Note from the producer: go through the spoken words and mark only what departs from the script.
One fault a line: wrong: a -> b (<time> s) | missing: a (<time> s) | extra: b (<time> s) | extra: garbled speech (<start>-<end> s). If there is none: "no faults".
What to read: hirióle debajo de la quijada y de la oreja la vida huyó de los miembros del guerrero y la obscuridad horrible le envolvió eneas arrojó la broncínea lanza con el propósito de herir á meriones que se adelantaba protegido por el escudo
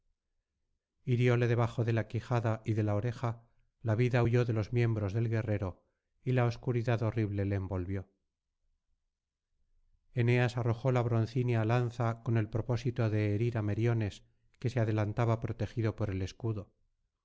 no faults